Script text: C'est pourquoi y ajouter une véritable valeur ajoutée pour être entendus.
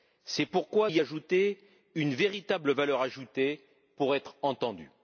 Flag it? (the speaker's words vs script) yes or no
no